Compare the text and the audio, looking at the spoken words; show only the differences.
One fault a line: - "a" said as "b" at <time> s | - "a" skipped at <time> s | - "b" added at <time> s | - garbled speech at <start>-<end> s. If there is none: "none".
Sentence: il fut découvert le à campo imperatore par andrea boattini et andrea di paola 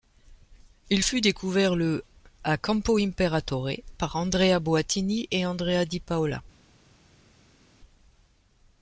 none